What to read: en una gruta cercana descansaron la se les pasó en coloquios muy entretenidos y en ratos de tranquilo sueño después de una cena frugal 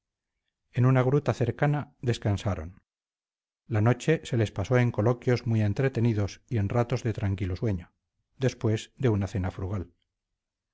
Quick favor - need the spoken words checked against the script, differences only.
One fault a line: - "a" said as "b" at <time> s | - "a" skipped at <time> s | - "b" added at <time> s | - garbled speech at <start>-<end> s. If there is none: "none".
- "noche" added at 3.8 s